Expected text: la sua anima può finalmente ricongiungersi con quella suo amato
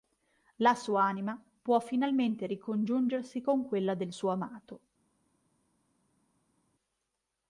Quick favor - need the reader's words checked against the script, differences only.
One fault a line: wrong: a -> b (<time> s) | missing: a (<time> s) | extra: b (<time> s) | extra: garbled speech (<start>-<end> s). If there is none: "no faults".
extra: del (3.9 s)